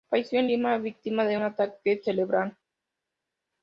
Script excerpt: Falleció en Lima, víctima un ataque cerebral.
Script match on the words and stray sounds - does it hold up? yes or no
no